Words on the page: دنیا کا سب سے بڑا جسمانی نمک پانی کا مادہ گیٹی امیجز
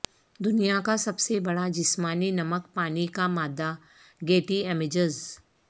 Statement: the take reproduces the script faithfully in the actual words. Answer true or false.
true